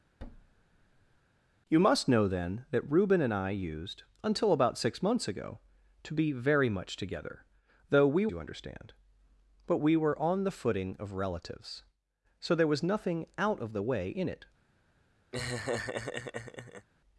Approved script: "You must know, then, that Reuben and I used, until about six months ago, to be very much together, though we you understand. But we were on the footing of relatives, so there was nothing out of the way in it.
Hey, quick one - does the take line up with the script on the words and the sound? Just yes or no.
no